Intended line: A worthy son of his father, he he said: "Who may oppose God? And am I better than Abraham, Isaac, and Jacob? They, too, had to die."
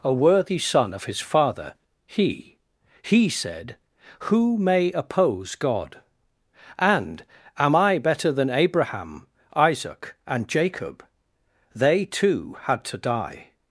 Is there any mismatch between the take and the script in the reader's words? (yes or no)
no